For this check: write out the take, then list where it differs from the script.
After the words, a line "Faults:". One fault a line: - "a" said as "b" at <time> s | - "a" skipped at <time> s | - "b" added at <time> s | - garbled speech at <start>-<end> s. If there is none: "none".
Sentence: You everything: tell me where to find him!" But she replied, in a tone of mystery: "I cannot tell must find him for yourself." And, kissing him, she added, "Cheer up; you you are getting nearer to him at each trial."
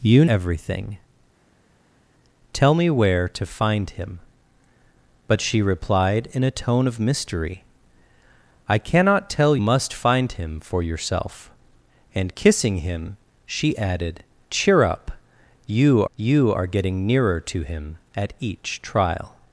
You everything: tell me where to find him!" But she replied, in a tone of mystery: "I cannot tell must find him for yourself." And, kissing him, she added, "Cheer up; you you are getting nearer to him at each trial."
Faults:
none